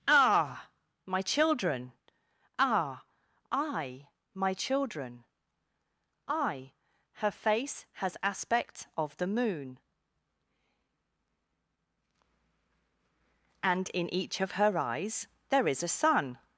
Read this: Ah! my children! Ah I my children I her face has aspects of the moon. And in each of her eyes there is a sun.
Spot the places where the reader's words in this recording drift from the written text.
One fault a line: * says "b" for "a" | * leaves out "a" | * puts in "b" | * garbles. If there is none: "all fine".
* says "aspect" for "aspects"